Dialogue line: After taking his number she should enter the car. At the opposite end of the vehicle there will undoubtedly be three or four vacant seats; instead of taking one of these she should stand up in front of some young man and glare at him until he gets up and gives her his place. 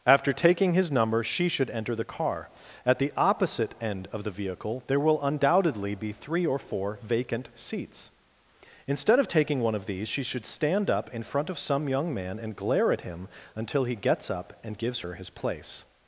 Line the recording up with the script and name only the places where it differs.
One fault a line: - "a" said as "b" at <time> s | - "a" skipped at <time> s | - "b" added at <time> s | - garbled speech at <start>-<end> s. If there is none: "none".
none